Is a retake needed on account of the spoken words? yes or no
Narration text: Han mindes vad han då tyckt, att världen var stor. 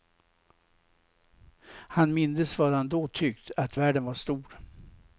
no